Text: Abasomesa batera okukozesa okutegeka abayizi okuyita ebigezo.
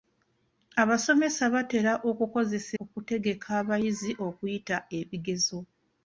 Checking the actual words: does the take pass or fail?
pass